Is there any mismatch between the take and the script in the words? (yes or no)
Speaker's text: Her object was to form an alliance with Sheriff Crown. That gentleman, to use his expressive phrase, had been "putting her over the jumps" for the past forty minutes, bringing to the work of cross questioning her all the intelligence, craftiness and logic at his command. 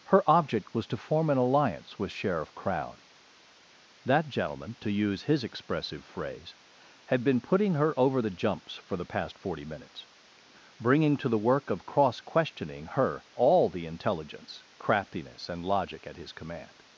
no